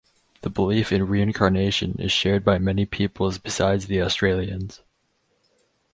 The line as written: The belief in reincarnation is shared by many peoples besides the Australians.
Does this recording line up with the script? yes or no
yes